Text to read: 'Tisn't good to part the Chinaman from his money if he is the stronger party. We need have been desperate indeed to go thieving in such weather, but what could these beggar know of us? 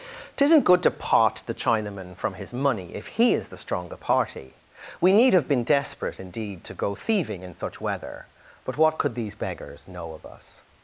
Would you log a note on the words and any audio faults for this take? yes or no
yes